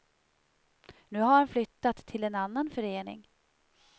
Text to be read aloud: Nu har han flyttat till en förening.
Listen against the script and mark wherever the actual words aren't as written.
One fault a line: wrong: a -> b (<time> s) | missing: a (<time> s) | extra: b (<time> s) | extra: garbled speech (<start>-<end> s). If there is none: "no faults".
extra: annan (2.4 s)